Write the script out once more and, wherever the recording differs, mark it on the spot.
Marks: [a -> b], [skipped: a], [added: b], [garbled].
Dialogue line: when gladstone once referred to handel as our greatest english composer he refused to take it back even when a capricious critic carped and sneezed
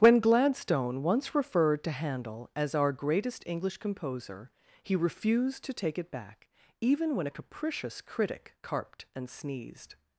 when gladstone once referred to handel as our greatest english composer he refused to take it back even when a capricious critic carped and sneezed